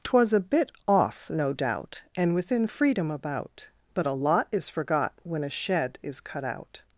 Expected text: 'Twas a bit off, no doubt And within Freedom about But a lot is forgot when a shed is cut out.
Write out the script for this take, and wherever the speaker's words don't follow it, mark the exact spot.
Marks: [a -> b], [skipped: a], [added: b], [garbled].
'Twas a bit off, no doubt And within Freedom about But a lot is forgot when a shed is cut out.